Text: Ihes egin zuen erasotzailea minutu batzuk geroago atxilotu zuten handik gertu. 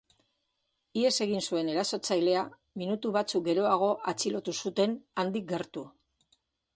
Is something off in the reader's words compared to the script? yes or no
no